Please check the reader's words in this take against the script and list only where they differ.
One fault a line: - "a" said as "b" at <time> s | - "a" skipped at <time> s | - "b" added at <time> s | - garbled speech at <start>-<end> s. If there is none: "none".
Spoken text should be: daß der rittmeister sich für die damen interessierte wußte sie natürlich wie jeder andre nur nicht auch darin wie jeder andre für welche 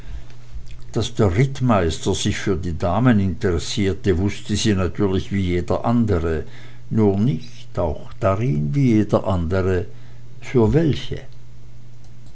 none